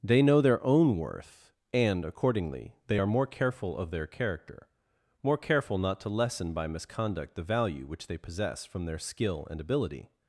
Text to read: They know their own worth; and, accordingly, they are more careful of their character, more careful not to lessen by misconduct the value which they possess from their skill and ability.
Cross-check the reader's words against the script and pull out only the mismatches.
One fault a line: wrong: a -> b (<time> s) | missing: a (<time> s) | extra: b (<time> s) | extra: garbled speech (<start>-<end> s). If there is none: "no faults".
no faults